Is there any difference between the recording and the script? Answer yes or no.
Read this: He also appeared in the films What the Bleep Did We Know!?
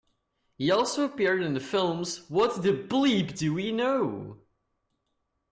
yes